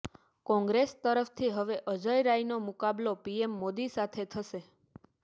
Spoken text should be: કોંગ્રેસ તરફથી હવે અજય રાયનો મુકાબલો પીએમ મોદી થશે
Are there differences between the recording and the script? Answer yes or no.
yes